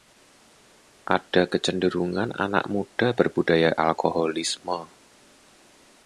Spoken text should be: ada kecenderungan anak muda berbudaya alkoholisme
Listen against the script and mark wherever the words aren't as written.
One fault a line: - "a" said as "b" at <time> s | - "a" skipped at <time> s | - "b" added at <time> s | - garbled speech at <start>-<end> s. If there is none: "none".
none